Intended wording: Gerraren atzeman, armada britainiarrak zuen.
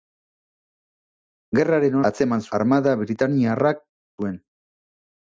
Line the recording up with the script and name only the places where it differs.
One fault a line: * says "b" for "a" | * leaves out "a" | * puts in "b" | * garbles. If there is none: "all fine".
all fine